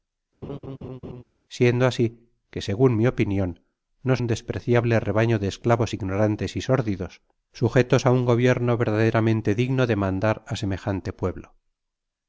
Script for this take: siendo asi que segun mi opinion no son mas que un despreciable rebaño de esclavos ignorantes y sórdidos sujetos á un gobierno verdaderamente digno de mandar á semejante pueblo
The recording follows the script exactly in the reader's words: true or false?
false